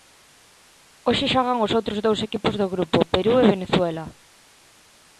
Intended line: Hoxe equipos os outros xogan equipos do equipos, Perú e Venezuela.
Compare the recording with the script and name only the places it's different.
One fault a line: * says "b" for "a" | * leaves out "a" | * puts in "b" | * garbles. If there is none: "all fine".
* says "xogan" for "equipos"
* says "dous" for "xogan"
* says "grupo" for "equipos"